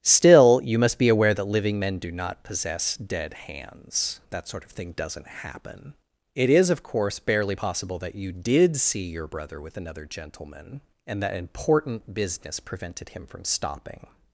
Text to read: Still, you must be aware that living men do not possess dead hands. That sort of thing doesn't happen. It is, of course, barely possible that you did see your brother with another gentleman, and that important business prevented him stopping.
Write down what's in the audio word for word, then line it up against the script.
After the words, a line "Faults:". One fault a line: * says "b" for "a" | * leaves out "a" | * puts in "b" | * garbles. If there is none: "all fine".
Still, you must be aware that living men do not possess dead hands. That sort of thing doesn't happen. It is, of course, barely possible that you did see your brother with another gentleman, and that important business prevented him from stopping.
Faults:
* puts in "from"